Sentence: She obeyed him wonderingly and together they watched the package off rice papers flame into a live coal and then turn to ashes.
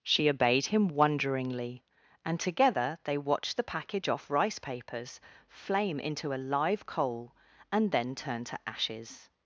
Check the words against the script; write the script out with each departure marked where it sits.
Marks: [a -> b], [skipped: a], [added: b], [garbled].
She obeyed him wonderingly and together they watched the package off rice papers flame into a live coal and then turn to ashes.